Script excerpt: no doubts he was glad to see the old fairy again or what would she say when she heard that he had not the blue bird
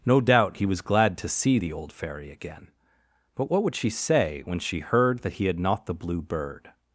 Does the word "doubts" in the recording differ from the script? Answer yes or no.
yes